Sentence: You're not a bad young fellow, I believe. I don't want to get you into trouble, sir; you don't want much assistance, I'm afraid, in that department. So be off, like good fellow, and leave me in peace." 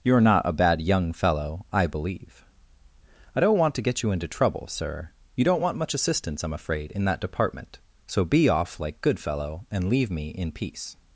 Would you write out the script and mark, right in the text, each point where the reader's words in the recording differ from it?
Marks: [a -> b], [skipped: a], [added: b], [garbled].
You're not a bad young fellow, I believe. I don't want to get you into trouble, sir; you don't want much assistance, I'm afraid, in that department. So be off, like good fellow, and leave me in peace."